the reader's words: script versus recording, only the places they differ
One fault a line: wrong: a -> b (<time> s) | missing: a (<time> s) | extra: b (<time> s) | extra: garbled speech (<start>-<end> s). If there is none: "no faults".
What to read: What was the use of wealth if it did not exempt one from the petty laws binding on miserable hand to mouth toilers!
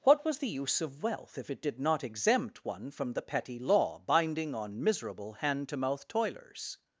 wrong: laws -> law (3.6 s)